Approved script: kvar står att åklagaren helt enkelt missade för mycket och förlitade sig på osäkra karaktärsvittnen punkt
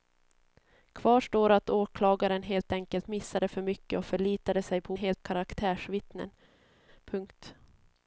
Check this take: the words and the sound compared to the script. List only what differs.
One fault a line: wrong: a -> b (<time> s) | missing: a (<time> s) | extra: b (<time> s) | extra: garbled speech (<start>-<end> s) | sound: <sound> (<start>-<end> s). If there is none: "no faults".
wrong: osäkra -> helt (5.0 s)